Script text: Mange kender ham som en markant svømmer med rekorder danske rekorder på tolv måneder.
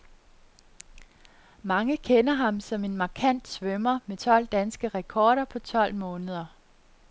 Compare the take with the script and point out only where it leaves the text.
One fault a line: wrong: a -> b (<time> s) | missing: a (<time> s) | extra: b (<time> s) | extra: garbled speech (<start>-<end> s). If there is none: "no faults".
wrong: rekorder -> tolv (4.1 s)